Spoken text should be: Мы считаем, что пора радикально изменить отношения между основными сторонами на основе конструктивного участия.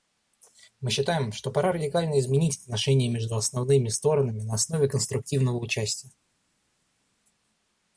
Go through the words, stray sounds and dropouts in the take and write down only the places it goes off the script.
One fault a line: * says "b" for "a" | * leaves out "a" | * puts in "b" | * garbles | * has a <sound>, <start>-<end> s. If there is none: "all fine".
all fine